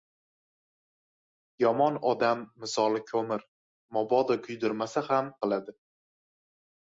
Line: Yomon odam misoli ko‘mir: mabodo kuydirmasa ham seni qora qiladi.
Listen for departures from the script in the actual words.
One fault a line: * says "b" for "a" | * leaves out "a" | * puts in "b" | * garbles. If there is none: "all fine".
* leaves out "seni qora"